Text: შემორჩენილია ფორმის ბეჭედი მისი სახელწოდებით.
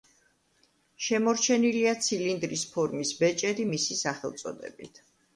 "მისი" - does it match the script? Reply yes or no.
yes